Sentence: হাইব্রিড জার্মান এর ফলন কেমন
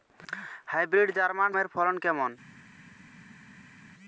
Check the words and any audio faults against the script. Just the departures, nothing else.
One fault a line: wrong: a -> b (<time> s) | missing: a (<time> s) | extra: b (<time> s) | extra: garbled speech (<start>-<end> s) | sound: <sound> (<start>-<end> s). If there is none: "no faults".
no faults